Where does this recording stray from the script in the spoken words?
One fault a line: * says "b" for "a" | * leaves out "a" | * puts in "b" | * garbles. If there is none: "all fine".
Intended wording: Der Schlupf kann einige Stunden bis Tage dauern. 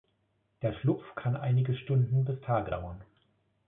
all fine